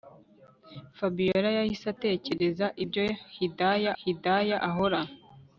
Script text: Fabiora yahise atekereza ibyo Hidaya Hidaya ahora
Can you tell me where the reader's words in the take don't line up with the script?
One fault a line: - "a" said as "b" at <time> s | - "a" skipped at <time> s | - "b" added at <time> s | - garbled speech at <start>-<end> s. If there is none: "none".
none